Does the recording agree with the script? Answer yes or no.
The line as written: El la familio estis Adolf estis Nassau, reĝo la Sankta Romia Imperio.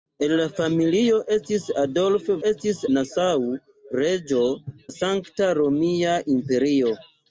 yes